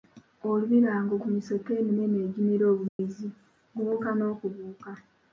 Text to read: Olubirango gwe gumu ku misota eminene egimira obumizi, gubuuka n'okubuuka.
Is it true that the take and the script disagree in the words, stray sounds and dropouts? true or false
true